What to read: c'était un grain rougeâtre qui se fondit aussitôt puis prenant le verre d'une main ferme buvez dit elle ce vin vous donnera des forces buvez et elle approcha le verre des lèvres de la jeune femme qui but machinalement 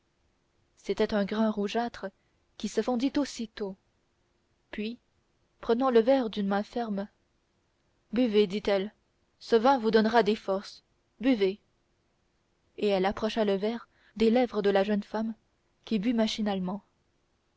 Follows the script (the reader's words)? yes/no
yes